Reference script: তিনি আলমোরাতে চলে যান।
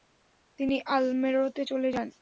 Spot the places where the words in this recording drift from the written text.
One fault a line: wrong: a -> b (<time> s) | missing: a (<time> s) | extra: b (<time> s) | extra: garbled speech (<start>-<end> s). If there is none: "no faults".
no faults